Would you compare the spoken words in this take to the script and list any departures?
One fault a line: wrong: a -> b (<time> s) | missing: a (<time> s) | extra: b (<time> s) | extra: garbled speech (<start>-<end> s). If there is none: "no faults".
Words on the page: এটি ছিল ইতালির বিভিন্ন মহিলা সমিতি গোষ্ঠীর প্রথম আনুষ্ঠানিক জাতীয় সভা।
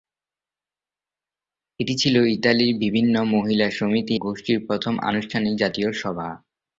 no faults